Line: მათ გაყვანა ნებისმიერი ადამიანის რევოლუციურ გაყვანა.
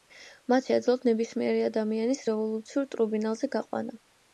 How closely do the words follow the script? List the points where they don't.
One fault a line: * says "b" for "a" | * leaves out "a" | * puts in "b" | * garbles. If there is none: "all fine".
* says "შეეძლოთ" for "გაყვანა"
* puts in "ტრიბუნალზე"